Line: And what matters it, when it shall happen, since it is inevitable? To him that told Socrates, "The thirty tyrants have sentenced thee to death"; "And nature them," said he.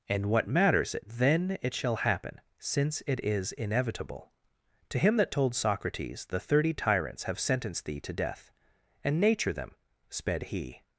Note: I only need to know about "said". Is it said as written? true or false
false